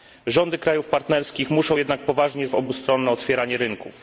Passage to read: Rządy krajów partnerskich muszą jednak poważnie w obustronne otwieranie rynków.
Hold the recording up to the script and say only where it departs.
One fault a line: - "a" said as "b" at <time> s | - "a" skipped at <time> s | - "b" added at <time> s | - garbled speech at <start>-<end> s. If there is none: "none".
none